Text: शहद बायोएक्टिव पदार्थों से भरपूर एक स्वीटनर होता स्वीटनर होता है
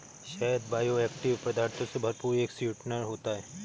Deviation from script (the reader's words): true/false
true